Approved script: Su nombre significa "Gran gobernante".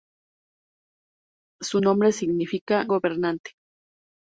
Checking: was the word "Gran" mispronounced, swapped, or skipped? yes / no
yes